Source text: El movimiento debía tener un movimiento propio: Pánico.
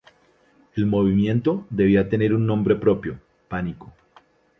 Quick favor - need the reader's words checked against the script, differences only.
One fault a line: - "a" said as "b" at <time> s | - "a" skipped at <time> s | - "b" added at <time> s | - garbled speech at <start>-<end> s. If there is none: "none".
- "movimiento" said as "nombre" at 2.5 s